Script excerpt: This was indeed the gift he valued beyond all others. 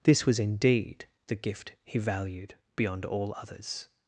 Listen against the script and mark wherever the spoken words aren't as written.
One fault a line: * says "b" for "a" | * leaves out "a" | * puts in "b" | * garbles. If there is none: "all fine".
all fine